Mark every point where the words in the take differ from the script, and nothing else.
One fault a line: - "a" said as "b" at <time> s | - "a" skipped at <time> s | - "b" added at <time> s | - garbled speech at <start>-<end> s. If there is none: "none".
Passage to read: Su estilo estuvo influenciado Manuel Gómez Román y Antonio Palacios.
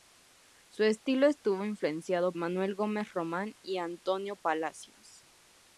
none